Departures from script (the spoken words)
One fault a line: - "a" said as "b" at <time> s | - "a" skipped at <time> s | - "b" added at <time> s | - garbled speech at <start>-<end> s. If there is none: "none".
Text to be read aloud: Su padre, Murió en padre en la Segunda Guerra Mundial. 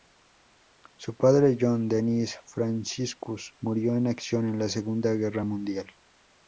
- "John Dennis Franciscus" added at 1.6 s
- "padre" said as "acción" at 4.1 s